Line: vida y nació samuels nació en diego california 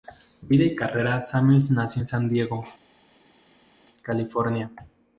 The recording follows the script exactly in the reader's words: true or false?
false